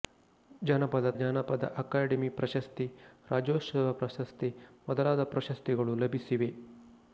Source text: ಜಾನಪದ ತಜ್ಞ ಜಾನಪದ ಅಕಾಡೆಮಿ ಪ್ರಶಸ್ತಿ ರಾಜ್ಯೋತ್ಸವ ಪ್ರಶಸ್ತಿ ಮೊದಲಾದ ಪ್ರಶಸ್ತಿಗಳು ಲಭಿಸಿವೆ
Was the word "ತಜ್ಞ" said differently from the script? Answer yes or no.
yes